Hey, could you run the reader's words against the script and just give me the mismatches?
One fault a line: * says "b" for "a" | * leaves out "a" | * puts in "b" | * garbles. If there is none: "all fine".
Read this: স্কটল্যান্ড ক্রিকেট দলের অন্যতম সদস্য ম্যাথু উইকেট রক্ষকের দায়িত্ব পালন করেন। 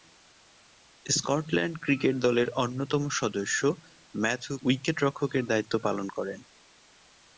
all fine